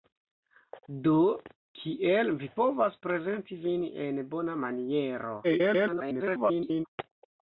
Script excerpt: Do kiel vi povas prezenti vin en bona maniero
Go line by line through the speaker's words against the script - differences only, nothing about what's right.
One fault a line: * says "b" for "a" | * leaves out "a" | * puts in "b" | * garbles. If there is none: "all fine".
* garbles